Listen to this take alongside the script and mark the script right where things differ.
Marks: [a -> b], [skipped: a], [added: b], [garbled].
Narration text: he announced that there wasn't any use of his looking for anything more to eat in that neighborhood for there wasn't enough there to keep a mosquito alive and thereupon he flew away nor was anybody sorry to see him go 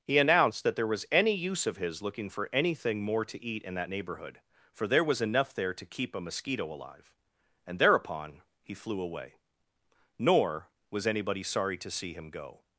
he announced that there [wasn't -> was] any use of his looking for anything more to eat in that neighborhood for there [wasn't -> was] enough there to keep a mosquito alive and thereupon he flew away nor was anybody sorry to see him go